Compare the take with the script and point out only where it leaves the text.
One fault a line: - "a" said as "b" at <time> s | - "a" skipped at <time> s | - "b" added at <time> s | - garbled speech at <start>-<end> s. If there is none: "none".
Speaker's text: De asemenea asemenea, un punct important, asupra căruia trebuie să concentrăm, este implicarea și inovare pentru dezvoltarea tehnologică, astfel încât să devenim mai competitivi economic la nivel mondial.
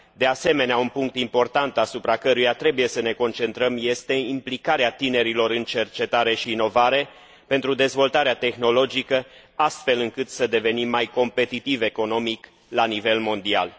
- "asemenea" skipped at 0.8 s
- "ne" added at 3.0 s
- "tinerilor în cercetare" added at 4.9 s